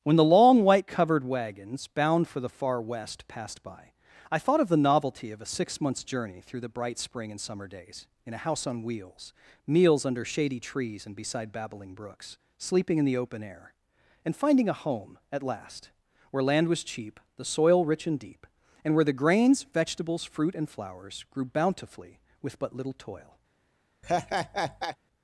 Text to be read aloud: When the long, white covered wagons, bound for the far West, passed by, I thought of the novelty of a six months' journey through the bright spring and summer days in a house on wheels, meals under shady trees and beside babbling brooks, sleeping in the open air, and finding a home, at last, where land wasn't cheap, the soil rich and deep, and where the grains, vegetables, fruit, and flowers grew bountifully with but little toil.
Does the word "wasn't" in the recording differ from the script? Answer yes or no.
yes